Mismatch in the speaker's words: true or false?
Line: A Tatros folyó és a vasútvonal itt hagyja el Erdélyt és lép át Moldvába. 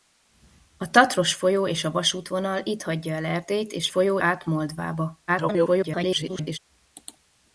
true